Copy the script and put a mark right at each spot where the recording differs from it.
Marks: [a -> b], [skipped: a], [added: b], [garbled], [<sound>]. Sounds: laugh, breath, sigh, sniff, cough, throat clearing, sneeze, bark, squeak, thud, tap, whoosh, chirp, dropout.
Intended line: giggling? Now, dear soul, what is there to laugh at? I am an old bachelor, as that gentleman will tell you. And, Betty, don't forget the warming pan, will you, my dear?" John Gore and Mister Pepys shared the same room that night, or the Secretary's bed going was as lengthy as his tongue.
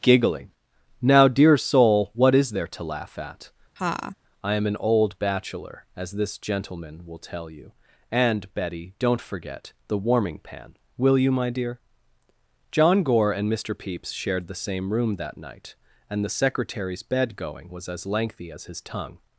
giggling? Now, dear soul, what is there to laugh at? [laugh] I am an old bachelor, as [that -> this] gentleman will tell you. And, Betty, don't forget the warming pan, will you, my dear?" John Gore and Mister Pepys shared the same room that night, [or -> and] the Secretary's bed going was as lengthy as his tongue.